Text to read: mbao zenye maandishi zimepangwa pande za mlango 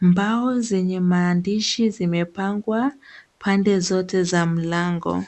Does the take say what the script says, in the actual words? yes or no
no